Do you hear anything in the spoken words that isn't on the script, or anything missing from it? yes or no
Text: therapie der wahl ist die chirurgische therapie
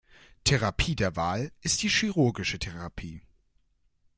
no